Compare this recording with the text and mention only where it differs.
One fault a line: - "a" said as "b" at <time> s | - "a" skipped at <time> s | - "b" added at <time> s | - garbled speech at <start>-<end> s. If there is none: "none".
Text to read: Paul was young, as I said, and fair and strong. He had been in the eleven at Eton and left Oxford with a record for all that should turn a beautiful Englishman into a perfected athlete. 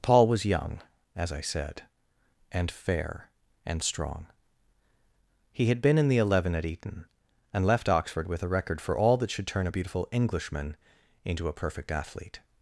- "perfected" said as "perfect" at 11.5 s